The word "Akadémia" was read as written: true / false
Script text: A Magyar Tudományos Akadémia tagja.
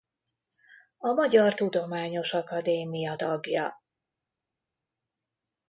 true